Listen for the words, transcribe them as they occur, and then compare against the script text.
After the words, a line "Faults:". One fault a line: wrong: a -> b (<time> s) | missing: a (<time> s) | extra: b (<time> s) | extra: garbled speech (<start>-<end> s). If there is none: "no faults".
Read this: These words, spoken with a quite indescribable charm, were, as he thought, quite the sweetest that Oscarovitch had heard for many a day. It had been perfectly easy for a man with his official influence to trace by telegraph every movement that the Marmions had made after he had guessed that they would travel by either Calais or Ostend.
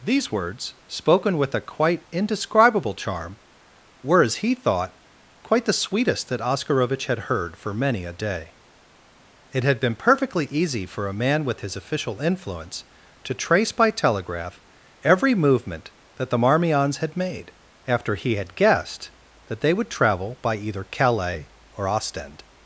These words, spoken with a quite indescribable charm, were, as he thought, quite the sweetest that Oscarovitch had heard for many a day. It had been perfectly easy for a man with his official influence to trace by telegraph every movement that the Marmions had made after he had guessed that they would travel by either Calais or Ostend.
Faults:
no faults